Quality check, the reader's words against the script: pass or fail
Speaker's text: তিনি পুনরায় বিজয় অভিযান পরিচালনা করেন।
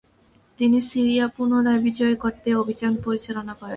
fail